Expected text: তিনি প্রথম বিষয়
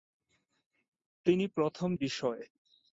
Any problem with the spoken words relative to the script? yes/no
no